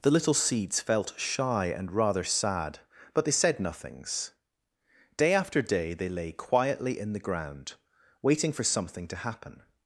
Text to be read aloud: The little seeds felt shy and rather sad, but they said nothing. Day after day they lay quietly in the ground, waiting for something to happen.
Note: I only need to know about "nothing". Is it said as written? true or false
false